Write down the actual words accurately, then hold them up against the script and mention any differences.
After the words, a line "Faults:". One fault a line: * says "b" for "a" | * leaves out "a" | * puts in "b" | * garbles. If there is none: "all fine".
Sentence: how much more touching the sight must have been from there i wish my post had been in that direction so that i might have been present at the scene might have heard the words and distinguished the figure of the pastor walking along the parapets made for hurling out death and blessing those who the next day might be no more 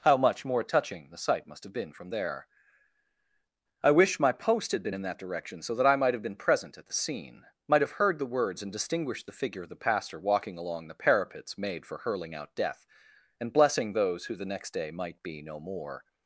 how much more touching the sight must have been from there i wish my post had been in that direction so that i might have been present at the scene might have heard the words and distinguished the figure of the pastor walking along the parapets made for hurling out death and blessing those who the next day might be no more
Faults:
all fine